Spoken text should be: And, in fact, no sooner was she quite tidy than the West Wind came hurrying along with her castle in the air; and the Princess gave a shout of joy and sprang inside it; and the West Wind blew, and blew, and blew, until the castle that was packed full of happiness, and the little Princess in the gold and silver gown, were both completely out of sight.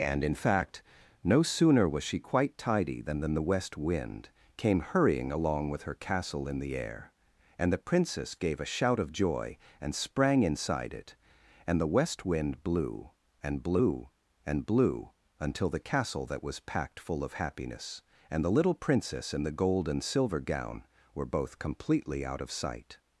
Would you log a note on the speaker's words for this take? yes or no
yes